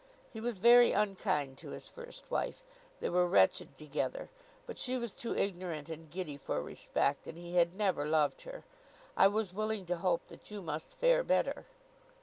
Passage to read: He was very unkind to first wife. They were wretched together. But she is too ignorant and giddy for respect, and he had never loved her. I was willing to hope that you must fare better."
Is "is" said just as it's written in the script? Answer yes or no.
no